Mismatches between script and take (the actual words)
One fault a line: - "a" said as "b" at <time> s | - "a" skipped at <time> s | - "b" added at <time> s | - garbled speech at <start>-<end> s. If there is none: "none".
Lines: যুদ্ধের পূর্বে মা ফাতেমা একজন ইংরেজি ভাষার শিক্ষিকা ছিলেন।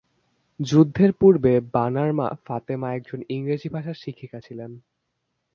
- "বানার" added at 1.7 s